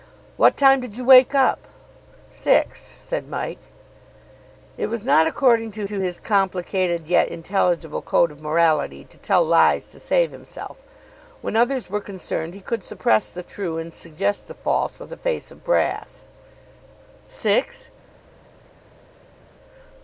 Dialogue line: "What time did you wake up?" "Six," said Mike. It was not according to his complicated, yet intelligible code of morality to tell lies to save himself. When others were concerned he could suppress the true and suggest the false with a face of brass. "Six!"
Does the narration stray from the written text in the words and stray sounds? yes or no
yes